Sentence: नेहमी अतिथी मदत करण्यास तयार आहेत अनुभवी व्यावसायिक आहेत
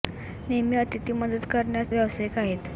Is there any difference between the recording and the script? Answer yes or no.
yes